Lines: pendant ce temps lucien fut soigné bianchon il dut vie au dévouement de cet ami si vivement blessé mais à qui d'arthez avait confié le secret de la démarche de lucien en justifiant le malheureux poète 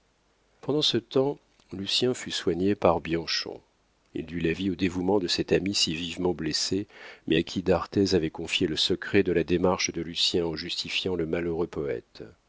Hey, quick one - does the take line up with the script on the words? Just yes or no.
no